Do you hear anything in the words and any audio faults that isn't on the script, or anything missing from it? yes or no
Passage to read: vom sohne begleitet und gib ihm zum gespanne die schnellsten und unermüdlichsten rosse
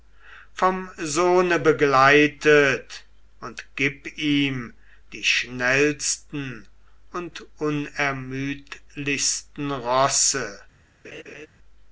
yes